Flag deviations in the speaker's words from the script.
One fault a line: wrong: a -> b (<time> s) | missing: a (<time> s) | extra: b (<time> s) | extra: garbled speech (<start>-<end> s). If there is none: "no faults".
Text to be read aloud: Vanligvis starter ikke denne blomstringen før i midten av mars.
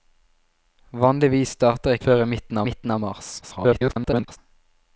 missing: ikke denne blomstringen (2.0 s)
extra: midten (2.7 s)
extra: garbled speech (3.4-4.4 s)